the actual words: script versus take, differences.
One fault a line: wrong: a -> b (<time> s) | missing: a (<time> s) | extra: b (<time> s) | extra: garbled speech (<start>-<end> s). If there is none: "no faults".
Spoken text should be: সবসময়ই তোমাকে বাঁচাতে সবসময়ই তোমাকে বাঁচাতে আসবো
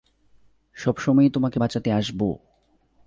missing: সবসময়ই তোমাকে বাঁচাতে (1.9 s)